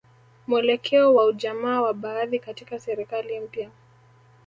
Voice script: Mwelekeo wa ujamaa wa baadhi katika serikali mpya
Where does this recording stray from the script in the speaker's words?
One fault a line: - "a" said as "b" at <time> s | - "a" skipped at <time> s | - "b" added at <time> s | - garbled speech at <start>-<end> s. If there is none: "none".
none